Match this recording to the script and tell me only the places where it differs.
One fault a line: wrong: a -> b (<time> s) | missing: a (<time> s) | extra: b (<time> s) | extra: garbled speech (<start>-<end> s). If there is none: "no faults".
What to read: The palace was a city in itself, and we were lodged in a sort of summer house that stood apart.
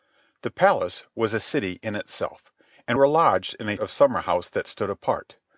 missing: we (3.0 s)
missing: sort (3.8 s)